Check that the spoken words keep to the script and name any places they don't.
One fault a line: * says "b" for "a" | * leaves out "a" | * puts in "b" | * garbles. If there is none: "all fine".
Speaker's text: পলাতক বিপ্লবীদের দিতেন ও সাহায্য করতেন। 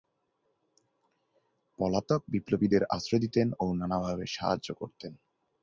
* puts in "আশ্রয়"
* puts in "নানাভাবে"